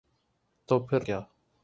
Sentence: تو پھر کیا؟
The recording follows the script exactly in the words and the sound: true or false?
true